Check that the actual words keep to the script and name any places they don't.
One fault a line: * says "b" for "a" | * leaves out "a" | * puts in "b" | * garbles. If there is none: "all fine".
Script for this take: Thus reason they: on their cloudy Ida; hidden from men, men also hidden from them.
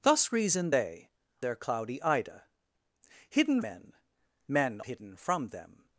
* leaves out "on"
* leaves out "from"
* leaves out "also"